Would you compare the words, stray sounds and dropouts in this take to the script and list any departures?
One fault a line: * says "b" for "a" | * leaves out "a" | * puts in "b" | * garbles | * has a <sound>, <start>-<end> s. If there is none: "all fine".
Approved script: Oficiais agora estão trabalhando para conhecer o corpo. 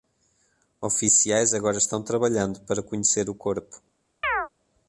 * has a chirp, 4.2-4.5 s